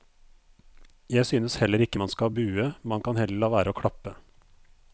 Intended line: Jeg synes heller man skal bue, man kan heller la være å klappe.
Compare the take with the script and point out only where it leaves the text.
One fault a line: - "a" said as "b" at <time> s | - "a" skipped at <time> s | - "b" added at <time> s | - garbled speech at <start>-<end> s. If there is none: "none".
- "ikke" added at 1.8 s